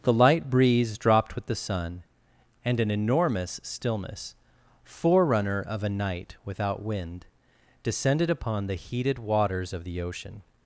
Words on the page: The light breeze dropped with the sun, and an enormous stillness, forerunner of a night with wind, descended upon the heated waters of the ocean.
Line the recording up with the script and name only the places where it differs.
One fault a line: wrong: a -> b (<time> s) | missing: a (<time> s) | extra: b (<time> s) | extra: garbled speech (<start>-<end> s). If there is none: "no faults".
wrong: with -> without (6.4 s)